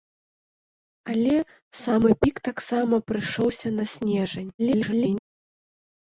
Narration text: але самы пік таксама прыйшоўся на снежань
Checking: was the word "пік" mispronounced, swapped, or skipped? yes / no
no